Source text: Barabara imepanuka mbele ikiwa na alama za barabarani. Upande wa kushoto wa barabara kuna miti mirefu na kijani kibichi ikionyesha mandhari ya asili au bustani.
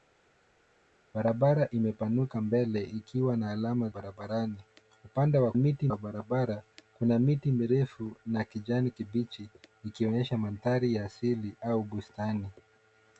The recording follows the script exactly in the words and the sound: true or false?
false